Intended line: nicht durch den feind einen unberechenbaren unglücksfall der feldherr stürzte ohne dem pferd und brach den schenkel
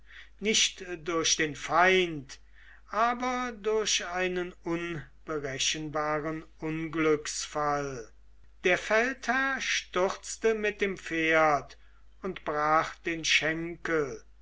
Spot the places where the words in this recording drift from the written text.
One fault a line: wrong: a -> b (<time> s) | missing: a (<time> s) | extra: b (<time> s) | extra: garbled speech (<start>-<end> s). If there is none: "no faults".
extra: aber durch (2.9 s)
wrong: ohne -> mit (10.5 s)